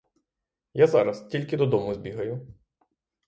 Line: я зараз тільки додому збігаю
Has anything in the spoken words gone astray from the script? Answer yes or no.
no